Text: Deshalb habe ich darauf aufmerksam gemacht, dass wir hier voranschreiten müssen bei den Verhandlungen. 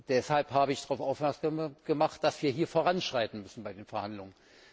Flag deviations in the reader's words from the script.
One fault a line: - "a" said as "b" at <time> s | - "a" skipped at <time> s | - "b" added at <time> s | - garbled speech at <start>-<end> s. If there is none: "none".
none